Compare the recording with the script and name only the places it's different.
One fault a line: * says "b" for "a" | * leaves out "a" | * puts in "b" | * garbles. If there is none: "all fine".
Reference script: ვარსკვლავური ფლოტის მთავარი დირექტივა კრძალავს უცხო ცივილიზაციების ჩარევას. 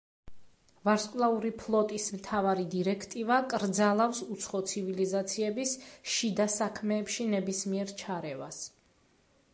* puts in "შიდა საქმეებში ნებისმიერ"